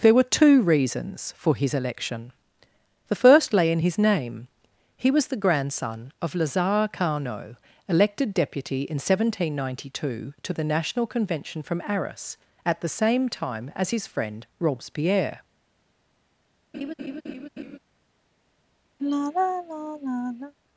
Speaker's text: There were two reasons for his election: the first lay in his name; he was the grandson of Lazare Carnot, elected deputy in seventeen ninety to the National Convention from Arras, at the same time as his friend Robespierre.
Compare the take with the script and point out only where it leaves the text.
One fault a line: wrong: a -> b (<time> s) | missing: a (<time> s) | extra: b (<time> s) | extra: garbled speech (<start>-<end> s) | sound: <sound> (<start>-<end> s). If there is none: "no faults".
extra: two (10.1 s)
sound: laugh (16.7-17.8 s)
sound: sigh (19.0-20.5 s)